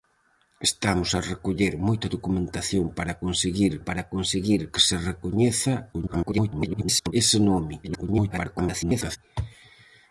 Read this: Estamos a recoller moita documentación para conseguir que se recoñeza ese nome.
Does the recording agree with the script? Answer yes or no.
no